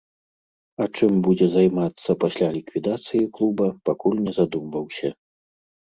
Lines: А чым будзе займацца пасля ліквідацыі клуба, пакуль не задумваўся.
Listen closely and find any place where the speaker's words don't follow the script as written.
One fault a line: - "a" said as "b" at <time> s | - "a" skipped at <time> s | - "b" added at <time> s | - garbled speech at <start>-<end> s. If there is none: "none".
none